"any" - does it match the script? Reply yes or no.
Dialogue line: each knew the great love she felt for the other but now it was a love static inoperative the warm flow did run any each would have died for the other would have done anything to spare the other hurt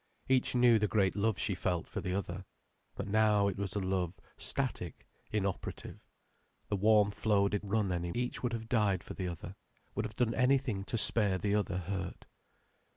yes